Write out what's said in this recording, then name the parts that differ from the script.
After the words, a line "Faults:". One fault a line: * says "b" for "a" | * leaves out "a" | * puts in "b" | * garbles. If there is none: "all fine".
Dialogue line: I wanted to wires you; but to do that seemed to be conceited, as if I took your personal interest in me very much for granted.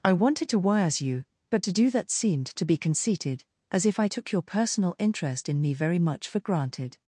I wanted to wires you; but to do that seemed to be conceited, as if I took your personal interest in me very much for granted.
Faults:
all fine